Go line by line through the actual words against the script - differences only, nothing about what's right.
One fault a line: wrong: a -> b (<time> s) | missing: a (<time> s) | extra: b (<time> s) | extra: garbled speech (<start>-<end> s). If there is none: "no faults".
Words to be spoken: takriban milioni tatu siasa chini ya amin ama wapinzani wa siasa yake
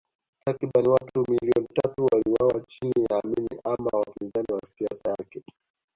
extra: watu (0.9 s)
wrong: siasa -> waliuawa (2.1 s)